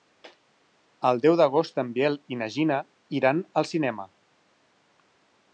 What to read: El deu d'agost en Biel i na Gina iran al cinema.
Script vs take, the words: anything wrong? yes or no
no